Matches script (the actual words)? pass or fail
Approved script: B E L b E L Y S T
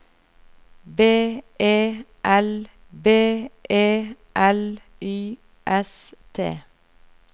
pass